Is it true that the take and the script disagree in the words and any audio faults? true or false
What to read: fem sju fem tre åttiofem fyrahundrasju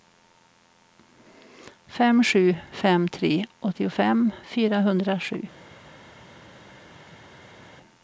false